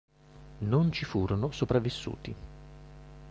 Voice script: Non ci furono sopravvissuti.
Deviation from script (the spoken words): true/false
false